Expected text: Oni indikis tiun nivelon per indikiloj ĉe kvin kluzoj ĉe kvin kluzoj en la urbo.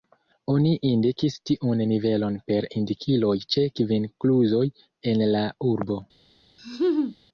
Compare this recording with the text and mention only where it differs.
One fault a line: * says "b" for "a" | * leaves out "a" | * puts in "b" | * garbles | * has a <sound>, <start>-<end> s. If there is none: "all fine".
* leaves out "ĉe kvin kluzoj"
* has a laugh, 6.6-7.2 s